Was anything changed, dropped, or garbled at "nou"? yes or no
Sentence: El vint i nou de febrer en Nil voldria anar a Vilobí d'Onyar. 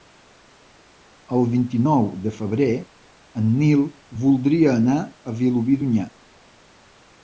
no